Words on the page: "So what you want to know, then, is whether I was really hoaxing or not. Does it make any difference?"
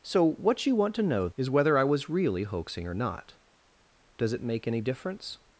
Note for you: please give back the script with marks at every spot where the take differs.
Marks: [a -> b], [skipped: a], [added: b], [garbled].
"So what you want to know, [skipped: then,] is whether I was really hoaxing or not. Does it make any difference?"